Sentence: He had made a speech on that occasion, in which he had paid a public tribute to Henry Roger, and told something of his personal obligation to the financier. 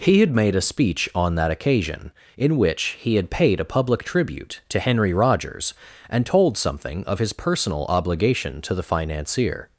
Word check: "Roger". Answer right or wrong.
wrong